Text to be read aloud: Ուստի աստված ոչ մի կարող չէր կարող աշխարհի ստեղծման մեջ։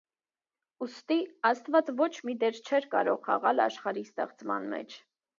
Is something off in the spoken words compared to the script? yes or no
yes